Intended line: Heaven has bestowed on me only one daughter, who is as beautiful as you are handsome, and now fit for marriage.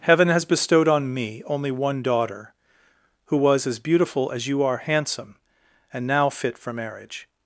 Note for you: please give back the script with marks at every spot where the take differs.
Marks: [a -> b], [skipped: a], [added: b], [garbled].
Heaven has bestowed on me only one daughter, who [is -> was] as beautiful as you are handsome, and now fit for marriage.